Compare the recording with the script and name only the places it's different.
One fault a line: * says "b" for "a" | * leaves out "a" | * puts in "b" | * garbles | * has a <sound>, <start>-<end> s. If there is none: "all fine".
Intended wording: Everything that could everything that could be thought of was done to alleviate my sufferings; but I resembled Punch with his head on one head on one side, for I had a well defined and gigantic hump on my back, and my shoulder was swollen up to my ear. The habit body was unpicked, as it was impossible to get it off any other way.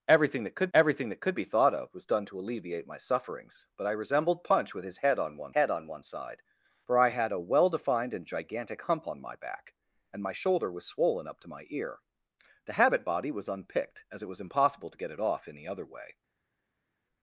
all fine